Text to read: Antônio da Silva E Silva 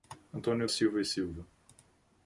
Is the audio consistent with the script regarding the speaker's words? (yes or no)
no